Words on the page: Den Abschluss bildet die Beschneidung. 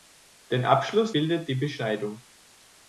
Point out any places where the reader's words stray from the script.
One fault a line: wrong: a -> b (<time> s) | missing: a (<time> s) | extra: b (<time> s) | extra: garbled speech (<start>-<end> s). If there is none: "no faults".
no faults